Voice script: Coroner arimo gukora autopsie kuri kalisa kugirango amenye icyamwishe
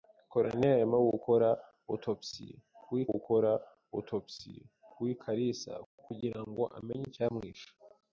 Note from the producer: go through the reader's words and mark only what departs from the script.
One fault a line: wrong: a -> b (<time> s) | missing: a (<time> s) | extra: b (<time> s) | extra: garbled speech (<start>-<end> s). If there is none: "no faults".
extra: gukora autopsie kuri (3.1 s)